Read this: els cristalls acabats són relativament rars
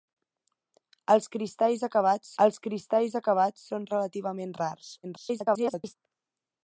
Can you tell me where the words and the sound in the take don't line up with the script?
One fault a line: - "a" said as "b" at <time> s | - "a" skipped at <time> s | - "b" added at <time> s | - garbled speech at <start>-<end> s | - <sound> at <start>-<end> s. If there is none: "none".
- "els cristalls acabats" added at 2.5 s
- garbled speech at 5.0-6.0 s